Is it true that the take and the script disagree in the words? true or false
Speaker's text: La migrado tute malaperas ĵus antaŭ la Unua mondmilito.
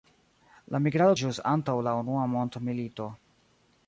true